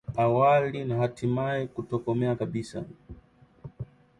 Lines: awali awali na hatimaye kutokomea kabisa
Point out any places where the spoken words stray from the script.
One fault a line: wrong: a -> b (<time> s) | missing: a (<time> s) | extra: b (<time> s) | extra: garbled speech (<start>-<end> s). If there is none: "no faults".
missing: awali (0.8 s)